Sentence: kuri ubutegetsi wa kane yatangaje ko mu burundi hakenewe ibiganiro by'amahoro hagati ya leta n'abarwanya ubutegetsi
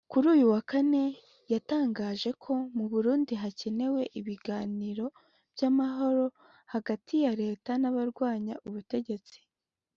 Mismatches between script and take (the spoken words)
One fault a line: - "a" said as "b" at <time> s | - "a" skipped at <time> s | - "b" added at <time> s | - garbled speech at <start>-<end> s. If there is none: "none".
- "ubutegetsi" said as "uyu" at 0.3 s